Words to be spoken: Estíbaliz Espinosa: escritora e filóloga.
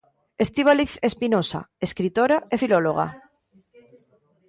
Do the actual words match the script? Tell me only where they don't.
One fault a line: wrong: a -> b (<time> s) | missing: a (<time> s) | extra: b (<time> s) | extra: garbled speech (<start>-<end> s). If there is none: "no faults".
no faults